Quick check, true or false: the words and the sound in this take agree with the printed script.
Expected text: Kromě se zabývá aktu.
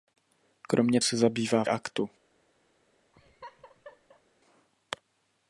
false